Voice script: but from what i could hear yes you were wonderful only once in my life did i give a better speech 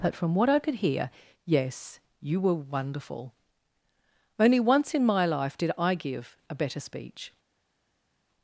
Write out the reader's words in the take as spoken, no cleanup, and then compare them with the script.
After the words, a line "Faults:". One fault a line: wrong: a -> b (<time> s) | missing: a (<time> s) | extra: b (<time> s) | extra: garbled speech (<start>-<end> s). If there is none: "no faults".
but from what i could hear yes you were wonderful only once in my life did i give a better speech
Faults:
no faults